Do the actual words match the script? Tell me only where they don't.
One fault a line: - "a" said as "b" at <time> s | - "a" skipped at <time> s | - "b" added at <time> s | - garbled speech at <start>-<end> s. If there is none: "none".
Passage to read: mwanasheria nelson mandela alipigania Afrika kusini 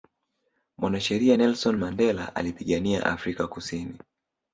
none